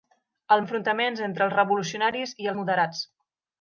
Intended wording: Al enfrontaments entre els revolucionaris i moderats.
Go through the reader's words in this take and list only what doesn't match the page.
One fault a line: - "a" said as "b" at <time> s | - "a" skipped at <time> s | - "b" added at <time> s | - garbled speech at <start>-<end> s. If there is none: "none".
none